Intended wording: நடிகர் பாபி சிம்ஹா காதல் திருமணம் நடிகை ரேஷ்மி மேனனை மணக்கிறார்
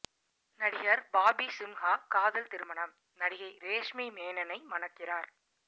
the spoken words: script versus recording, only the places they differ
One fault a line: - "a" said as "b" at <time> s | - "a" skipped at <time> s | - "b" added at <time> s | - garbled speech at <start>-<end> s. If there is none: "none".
none